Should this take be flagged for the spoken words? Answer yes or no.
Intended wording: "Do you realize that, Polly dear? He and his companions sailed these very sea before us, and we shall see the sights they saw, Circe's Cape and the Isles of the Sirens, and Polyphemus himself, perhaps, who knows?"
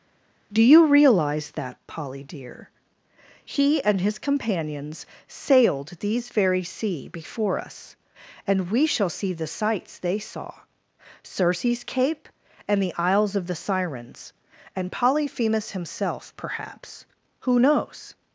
no